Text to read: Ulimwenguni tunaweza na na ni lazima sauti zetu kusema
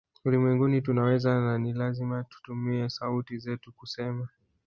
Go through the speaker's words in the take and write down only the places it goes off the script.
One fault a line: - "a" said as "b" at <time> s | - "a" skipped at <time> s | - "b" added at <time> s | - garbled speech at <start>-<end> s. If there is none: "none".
- "na" skipped at 1.6 s
- "tutumie" added at 2.2 s